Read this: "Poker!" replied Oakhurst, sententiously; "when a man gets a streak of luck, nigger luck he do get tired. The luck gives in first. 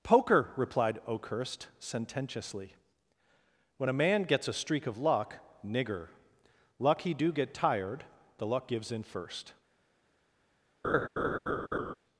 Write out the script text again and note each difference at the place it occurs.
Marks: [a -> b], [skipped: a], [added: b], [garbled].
"Poker!" replied Oakhurst, sententiously; "when a man gets a streak of luck, nigger luck he do get tired. The luck gives in first.